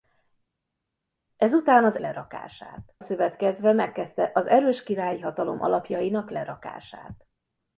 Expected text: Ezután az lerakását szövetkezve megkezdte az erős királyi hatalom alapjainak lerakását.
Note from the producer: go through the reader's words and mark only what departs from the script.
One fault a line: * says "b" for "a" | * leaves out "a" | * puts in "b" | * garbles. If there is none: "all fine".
all fine